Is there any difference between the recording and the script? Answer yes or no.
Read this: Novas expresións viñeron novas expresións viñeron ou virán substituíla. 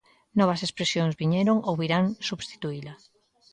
yes